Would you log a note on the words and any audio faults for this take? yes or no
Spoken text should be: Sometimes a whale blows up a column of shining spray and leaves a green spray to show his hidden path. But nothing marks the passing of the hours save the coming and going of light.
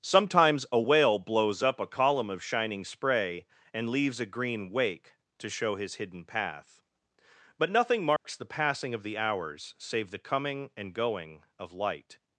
yes